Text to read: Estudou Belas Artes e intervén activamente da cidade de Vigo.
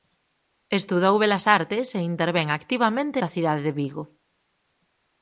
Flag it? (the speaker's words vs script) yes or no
no